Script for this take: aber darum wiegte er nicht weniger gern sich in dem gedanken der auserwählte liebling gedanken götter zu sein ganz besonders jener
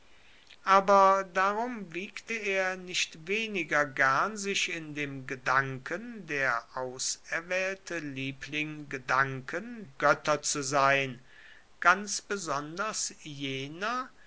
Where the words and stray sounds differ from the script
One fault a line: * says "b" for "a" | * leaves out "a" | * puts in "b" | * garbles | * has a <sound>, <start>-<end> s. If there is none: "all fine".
all fine